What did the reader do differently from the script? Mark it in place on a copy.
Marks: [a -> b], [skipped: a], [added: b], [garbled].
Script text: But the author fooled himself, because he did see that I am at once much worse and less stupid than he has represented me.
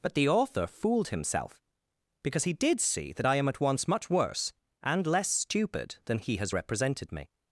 But the author fooled himself, because he did see that I am at once much worse and less stupid than he has represented me.